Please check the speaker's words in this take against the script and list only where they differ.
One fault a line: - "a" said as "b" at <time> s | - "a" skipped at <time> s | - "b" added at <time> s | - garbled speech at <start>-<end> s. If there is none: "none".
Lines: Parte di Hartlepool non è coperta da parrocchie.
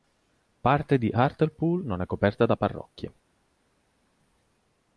none